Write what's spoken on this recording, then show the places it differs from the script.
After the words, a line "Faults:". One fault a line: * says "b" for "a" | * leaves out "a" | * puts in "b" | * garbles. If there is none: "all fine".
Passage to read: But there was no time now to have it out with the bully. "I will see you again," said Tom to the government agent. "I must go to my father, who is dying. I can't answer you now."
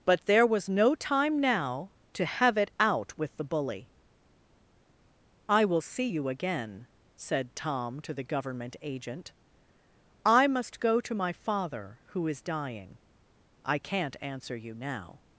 But there was no time now to have it out with the bully. "I will see you again," said Tom to the government agent. "I must go to my father, who is dying. I can't answer you now."
Faults:
all fine